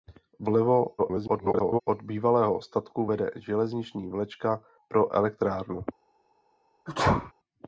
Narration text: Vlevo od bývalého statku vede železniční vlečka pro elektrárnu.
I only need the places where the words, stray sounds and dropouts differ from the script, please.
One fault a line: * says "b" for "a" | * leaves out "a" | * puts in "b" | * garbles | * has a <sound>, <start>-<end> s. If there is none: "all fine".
* garbles
* has a sneeze, 6.9-7.3 s